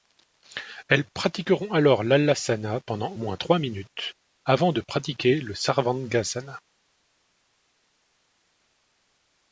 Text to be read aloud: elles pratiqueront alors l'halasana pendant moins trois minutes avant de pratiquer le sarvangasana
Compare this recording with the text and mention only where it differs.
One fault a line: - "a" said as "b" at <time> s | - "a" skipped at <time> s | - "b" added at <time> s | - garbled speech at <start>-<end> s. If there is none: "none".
none